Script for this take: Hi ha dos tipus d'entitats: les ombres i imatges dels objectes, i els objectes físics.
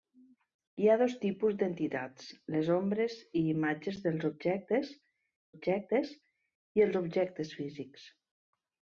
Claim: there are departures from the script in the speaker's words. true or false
true